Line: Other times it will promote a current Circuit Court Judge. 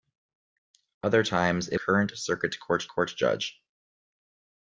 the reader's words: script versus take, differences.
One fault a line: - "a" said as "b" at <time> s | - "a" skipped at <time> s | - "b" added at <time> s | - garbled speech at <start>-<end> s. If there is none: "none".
- "will promote a" skipped at 1.8 s
- "Court" added at 2.9 s